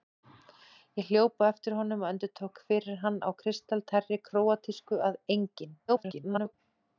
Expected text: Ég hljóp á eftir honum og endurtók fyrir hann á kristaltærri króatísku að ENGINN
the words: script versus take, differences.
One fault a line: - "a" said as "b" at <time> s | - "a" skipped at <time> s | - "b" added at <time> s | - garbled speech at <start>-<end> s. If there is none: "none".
- garbled speech at 5.9-6.5 s